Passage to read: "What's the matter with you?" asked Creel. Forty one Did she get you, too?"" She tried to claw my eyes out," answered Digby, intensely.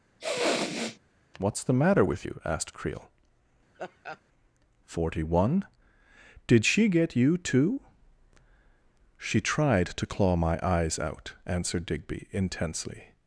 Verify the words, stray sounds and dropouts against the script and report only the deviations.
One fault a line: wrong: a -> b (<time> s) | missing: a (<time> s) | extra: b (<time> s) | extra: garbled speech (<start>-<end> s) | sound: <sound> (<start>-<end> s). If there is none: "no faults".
sound: sniff (0.2-1.0 s)
sound: laugh (3.7-4.2 s)